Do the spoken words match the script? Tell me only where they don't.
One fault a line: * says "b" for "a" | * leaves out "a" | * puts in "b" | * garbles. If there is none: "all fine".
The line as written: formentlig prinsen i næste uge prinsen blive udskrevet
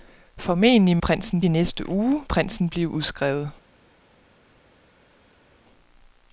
all fine